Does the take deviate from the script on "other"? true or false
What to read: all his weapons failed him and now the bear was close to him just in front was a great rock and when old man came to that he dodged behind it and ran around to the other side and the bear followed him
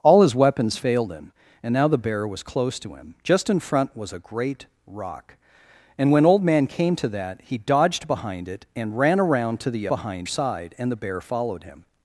true